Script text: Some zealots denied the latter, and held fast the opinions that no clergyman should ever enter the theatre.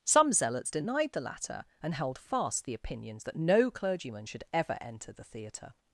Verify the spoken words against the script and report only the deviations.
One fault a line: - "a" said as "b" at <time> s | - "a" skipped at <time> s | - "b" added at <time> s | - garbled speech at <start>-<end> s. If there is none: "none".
none